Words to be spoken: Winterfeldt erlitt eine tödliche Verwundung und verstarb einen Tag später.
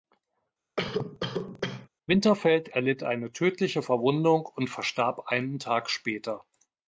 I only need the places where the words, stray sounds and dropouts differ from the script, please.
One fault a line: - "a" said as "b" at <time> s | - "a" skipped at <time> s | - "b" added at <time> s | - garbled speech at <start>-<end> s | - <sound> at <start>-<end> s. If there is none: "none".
- cough at 0.8-1.9 s